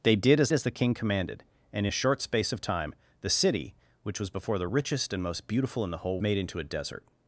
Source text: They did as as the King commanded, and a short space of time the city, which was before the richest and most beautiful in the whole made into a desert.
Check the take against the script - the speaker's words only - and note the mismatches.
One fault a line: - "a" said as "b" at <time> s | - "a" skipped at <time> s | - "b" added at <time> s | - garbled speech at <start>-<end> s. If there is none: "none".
none